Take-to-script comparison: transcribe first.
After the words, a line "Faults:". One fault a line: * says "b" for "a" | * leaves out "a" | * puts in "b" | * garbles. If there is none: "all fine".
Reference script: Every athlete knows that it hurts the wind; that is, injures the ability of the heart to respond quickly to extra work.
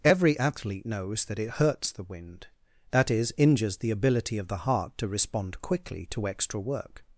Every athlete knows that it hurts the wind; that is, injures the ability of the heart to respond quickly to extra work.
Faults:
all fine